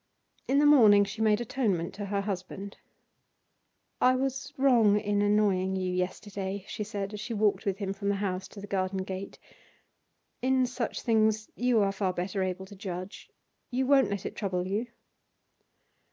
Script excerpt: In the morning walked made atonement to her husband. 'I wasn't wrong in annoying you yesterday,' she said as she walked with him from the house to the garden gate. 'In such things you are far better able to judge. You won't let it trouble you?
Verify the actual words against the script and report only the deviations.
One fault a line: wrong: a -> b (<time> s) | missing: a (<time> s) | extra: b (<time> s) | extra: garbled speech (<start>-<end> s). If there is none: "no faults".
wrong: walked -> she (1.1 s)
wrong: wasn't -> was (4.2 s)